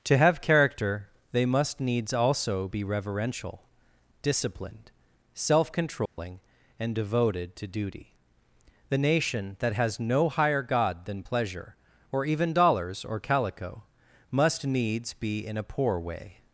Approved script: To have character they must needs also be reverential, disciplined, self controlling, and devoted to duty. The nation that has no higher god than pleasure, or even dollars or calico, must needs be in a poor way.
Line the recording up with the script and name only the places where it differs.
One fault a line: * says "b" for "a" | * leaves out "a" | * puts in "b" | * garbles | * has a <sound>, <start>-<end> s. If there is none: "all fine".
* has a dropout, 6.1-6.2 s